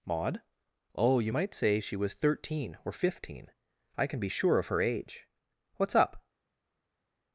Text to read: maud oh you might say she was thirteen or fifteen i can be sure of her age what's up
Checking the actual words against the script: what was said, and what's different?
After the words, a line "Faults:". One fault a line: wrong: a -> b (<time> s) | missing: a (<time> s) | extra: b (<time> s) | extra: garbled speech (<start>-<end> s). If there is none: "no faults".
maud oh you might say she was thirteen or fifteen i can be sure of her age what's up
Faults:
no faults